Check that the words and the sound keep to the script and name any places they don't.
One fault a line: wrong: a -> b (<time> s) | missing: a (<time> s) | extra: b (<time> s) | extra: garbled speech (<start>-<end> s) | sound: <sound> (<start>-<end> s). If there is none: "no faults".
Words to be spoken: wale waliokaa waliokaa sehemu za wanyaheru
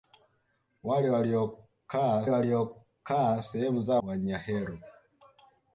no faults